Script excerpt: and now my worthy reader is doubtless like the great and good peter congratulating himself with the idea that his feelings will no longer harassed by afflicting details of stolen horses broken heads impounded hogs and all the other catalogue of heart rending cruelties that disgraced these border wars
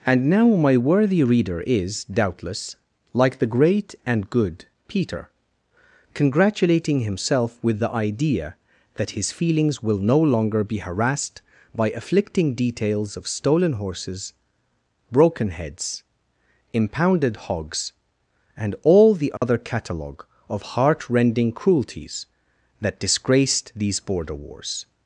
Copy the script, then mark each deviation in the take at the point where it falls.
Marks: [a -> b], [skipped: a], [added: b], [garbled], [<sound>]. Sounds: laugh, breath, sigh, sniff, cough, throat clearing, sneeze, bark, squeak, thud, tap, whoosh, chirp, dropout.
and now my worthy reader is doubtless like the great and good peter congratulating himself with the idea that his feelings will no longer [added: be] harassed by afflicting details of stolen horses broken heads impounded hogs and all the other [dropout] catalogue of heart rending cruelties that disgraced these border wars